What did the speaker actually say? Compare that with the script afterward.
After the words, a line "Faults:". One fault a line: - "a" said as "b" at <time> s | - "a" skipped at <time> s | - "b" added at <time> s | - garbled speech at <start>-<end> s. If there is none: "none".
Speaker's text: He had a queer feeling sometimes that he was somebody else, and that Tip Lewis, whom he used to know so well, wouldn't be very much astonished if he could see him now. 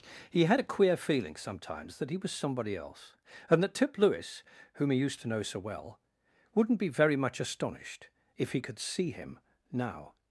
He had a queer feeling sometimes that he was somebody else, and that Tip Lewis, whom he used to know so well, wouldn't be very much astonished if he could see him now.
Faults:
none